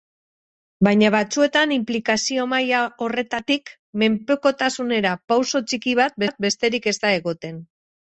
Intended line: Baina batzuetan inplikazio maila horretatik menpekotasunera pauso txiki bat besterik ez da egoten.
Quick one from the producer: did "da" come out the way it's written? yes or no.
yes